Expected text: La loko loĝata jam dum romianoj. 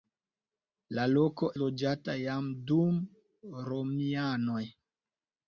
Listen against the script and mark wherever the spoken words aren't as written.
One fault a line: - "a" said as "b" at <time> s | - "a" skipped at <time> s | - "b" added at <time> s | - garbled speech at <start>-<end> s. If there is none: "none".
none